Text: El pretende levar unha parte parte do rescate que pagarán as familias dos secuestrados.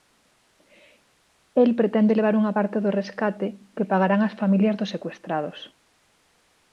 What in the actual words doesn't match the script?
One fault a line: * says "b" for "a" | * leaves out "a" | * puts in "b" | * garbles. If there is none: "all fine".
* leaves out "parte"